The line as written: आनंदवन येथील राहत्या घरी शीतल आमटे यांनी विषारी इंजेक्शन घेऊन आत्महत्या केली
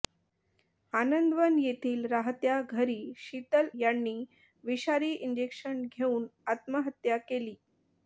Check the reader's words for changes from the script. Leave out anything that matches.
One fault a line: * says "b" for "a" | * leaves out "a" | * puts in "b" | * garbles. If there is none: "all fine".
* leaves out "आमटे"